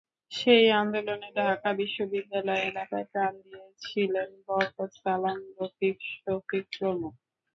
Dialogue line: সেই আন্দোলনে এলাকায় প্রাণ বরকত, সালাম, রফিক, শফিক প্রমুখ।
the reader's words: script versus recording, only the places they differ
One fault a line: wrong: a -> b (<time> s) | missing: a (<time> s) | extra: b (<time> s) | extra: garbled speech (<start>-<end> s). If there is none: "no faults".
extra: ঢাকা বিশ্ববিদ্যালয় (1.4 s)
extra: দিয়েছিলেন (3.4 s)